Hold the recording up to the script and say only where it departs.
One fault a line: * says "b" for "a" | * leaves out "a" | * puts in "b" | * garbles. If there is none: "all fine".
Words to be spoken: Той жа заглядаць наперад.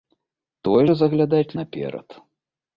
all fine